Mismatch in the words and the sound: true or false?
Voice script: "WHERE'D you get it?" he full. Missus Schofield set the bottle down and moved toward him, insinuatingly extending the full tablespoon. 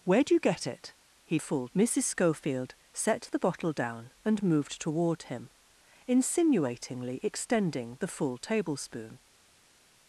false